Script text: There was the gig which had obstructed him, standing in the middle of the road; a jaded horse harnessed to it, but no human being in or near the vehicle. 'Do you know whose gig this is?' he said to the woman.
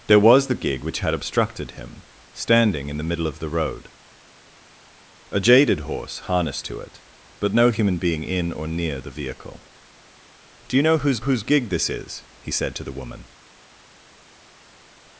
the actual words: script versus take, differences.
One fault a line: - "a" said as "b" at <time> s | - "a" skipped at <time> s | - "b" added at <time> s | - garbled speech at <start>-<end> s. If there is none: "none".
- "whose" added at 11.2 s